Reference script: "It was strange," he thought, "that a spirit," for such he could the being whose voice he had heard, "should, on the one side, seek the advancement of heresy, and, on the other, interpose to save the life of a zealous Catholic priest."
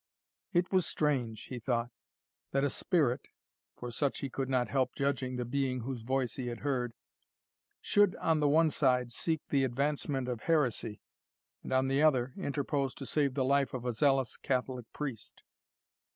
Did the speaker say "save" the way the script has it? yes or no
yes